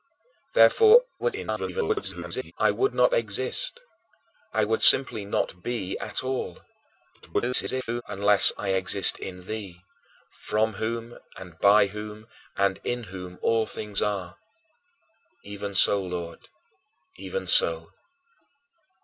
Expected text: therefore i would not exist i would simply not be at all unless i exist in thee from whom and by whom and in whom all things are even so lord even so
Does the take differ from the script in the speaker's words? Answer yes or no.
yes